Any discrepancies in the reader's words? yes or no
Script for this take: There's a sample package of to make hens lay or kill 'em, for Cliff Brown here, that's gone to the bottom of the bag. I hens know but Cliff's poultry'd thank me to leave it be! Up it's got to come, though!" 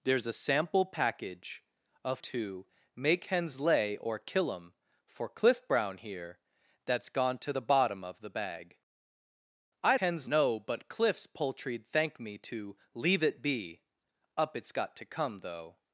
no